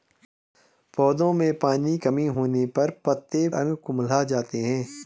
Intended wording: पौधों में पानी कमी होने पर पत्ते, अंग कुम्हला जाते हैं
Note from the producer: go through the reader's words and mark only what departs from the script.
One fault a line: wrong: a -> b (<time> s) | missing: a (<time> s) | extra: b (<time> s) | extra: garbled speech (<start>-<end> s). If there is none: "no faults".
no faults